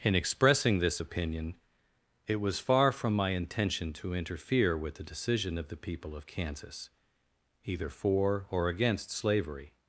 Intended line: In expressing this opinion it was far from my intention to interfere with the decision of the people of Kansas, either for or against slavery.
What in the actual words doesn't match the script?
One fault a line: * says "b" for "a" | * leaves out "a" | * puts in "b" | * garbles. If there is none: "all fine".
all fine